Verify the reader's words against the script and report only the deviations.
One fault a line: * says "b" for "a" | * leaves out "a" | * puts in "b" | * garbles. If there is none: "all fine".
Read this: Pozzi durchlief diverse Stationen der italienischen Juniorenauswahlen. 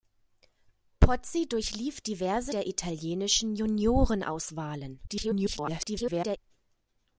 * leaves out "Stationen"
* garbles